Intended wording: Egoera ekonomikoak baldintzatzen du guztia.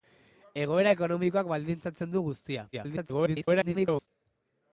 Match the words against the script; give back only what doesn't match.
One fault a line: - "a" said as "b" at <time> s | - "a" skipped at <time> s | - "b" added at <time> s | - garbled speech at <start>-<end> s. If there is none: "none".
- garbled speech at 2.7-4.1 s